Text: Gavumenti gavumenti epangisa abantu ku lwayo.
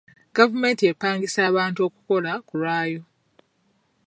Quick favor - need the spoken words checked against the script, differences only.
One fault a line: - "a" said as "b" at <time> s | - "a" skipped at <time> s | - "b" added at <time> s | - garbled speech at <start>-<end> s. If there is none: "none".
- "gavumenti" skipped at 0.8 s
- "okukola" added at 1.9 s